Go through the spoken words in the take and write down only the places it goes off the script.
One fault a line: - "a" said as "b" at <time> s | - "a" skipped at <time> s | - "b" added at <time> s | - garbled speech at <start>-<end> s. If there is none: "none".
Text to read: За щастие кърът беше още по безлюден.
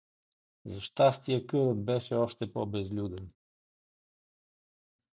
none